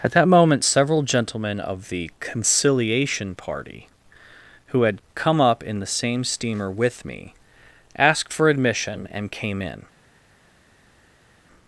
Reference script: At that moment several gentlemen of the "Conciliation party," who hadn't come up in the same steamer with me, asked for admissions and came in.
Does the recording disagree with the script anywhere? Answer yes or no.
yes